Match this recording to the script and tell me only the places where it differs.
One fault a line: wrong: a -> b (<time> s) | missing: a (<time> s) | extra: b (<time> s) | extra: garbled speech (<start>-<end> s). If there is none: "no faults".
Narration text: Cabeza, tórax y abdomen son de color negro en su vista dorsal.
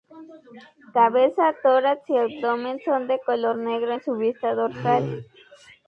no faults